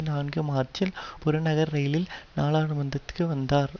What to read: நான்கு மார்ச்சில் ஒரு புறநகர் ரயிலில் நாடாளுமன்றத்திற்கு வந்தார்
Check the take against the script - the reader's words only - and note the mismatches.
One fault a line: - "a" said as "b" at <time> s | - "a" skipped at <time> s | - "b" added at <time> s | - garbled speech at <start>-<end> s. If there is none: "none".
- "ஒரு" skipped at 0.9 s